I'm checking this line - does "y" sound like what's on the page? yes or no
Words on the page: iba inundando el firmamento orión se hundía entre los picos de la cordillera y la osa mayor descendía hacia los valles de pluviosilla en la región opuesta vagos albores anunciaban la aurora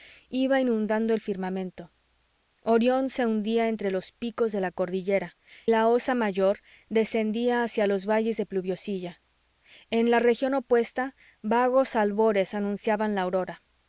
no